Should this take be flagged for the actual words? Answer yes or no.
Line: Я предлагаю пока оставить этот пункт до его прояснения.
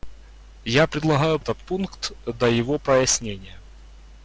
yes